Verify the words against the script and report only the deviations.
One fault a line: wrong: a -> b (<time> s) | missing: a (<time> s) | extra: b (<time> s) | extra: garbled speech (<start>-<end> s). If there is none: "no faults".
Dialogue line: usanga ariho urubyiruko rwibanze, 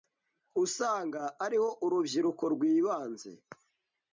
no faults